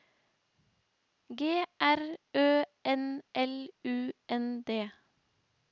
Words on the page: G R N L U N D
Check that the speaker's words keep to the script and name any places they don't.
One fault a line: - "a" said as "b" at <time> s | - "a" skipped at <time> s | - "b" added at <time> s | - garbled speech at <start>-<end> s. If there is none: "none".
- "Ø" added at 2.3 s